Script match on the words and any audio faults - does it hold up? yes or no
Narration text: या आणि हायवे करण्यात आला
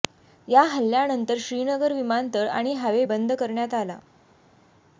no